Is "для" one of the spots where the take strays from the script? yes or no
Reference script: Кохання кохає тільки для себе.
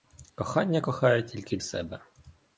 yes